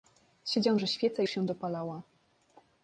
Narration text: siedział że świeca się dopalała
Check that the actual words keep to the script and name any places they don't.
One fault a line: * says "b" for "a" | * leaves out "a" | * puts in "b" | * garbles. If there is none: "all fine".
all fine